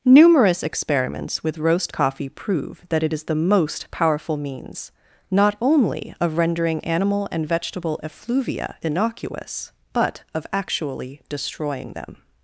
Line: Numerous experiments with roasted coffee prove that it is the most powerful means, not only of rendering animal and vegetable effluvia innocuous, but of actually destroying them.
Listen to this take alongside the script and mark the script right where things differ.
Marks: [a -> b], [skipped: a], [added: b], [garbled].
Numerous experiments with [roasted -> roast] coffee prove that it is the most powerful means, not only of rendering animal and vegetable effluvia innocuous, but of actually destroying them.